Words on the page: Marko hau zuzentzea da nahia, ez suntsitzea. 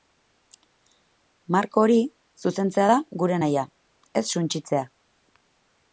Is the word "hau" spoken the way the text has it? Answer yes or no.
no